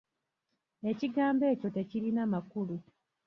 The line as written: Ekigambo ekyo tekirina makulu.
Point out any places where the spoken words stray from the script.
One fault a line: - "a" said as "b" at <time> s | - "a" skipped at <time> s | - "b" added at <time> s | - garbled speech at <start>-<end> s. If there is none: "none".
none